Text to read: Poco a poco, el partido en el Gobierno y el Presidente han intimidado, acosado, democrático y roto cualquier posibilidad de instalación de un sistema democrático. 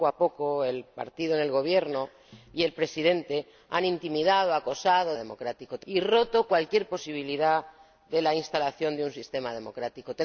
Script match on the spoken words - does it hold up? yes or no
yes